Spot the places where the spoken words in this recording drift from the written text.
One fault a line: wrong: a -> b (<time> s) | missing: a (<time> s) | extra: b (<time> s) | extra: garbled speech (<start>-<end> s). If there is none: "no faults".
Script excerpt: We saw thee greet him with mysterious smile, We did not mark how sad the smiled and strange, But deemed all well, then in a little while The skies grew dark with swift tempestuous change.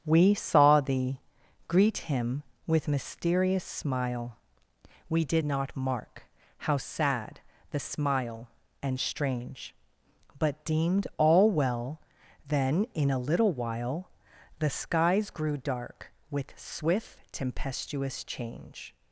wrong: smiled -> smile (7.8 s)